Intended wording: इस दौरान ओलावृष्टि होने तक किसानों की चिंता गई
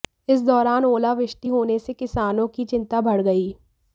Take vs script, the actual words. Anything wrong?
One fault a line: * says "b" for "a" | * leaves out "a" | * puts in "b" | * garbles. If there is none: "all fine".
* says "से" for "तक"
* puts in "बढ़"